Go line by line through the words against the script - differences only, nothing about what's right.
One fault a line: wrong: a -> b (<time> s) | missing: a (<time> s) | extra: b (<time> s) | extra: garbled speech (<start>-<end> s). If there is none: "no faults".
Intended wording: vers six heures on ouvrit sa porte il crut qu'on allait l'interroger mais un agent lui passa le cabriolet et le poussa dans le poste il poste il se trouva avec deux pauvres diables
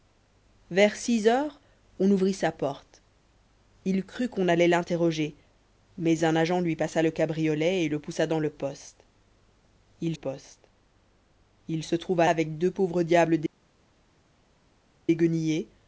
no faults